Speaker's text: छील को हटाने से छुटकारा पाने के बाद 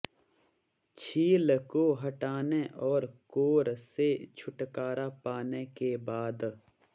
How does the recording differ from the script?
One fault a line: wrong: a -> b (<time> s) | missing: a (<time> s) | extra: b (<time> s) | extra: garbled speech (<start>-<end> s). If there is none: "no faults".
extra: और कोर (2.9 s)